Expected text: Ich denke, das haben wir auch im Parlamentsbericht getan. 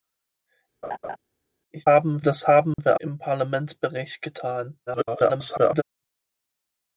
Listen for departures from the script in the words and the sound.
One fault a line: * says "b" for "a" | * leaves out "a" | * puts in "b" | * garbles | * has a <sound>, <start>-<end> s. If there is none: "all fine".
* has a laugh, 0.8-1.2 s
* says "haben" for "denke"
* has a dropout, 2.7-2.8 s
* leaves out "auch"
* garbles